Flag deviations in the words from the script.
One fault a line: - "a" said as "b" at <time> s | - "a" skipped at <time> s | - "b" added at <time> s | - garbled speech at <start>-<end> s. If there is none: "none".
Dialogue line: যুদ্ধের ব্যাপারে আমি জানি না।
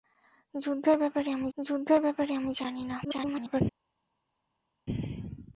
- "যুদ্ধের ব্যাপারে আমি" added at 1.6 s
- garbled speech at 3.0-3.6 s